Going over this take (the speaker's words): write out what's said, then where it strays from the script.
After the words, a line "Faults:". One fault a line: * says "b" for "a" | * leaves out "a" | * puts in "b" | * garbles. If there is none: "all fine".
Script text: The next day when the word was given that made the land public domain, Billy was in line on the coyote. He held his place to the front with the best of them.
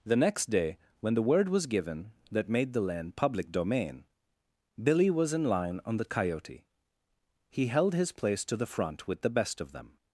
The next day when the word was given that made the land public domain, Billy was in line on the coyote. He held his place to the front with the best of them.
Faults:
all fine